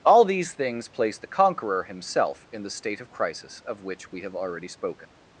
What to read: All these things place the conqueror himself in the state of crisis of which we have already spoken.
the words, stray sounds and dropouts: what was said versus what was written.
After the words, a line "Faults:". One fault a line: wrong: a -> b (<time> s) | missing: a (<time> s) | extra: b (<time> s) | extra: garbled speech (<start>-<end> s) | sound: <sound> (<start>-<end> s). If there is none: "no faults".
All these things place the conqueror himself in the state of crisis of which we have already spoken.
Faults:
no faults